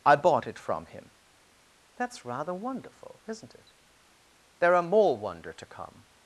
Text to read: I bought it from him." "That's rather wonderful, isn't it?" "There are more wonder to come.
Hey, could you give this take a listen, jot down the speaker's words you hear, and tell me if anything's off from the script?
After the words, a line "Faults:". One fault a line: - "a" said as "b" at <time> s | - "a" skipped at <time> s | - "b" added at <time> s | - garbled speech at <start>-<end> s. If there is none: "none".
I bought it from him." "That's rather wonderful, isn't it?" "There are more wonder to come.
Faults:
none